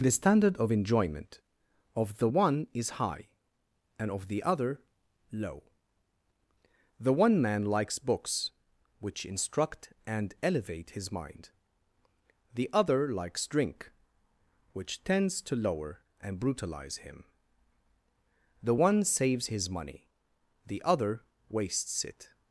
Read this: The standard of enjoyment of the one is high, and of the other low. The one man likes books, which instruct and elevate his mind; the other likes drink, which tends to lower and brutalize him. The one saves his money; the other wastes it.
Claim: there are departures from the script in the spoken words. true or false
false